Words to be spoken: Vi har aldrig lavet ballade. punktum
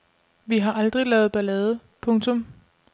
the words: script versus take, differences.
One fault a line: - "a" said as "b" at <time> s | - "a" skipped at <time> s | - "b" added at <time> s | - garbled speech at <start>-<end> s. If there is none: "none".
none